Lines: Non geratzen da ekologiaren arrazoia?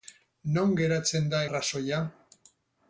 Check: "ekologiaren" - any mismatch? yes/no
yes